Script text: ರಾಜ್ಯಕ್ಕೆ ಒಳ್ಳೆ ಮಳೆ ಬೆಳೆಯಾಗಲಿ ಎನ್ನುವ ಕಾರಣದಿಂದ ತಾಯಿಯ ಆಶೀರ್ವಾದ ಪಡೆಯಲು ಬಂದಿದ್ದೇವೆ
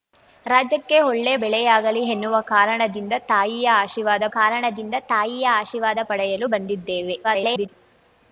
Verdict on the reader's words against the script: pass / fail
fail